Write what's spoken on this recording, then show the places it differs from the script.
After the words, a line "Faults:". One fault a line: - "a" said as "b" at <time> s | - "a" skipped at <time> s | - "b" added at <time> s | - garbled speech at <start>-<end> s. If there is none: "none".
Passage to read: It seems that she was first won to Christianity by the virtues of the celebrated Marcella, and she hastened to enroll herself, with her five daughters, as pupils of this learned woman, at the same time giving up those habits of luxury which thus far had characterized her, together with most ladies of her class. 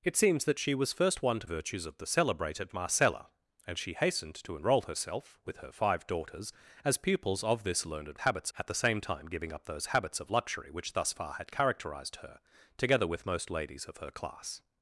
It seems that she was first won to Virtues of the celebrated Marcella, and she hastened to enroll herself, with her five daughters, as pupils of this learned habits, at the same time giving up those habits of luxury which thus far had characterized her, together with most ladies of her class.
Faults:
- "Christianity by the" skipped at 1.5 s
- "woman" said as "habits" at 8.2 s